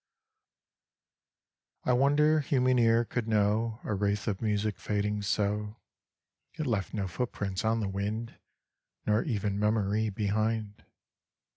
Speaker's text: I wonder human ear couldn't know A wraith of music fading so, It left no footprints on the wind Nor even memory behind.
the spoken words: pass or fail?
fail